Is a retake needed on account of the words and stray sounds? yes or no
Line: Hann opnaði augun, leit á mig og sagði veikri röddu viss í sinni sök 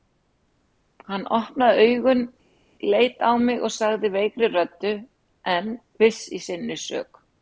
yes